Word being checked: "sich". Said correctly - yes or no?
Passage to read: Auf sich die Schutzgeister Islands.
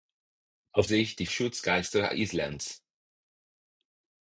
yes